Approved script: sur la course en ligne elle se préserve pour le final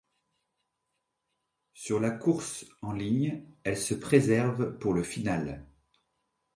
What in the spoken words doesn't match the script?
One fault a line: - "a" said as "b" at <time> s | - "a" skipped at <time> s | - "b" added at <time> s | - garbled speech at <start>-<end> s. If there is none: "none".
none